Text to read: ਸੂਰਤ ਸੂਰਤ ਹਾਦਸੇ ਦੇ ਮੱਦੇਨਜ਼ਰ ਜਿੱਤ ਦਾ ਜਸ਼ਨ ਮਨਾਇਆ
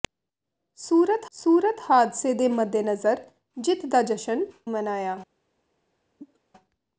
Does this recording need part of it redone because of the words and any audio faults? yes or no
yes